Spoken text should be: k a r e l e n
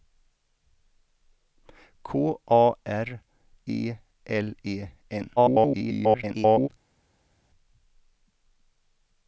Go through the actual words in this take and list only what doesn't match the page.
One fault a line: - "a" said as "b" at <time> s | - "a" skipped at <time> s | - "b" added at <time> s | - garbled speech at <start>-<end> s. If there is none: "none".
- garbled speech at 5.4-6.7 s